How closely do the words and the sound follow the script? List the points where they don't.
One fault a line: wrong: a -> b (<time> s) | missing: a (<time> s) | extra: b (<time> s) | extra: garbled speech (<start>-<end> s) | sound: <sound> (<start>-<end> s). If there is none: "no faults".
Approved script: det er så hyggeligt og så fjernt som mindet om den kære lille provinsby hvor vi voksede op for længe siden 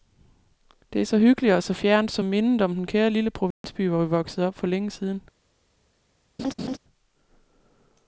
sound: dropout (3.5-3.6 s)
sound: laugh (6.4-6.8 s)